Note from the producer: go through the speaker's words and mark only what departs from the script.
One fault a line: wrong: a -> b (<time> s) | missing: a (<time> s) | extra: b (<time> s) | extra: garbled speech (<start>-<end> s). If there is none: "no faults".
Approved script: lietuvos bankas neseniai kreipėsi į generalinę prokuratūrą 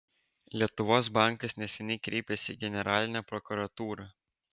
no faults